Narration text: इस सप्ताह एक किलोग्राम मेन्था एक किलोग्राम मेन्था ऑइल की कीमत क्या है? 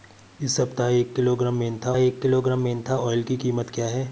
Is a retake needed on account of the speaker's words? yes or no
no